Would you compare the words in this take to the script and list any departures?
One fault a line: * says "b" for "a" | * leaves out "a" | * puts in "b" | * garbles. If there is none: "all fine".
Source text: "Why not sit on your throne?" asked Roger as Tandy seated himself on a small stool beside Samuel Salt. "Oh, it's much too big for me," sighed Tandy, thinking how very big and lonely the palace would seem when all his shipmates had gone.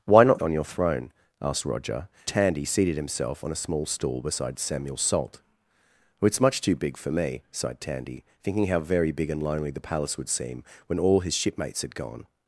* leaves out "sit"
* leaves out "as"